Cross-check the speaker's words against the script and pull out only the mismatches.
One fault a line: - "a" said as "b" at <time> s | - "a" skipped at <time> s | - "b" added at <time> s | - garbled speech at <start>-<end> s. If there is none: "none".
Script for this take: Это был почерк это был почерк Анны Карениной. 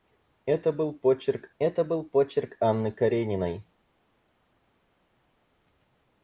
none